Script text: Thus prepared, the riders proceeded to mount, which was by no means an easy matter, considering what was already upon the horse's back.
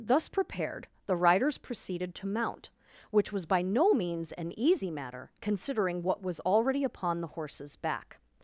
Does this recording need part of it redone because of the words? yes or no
no